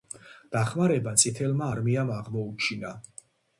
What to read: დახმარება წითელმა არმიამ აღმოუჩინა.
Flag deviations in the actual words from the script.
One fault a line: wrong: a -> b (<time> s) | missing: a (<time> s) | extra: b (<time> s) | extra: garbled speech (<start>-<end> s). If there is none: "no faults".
no faults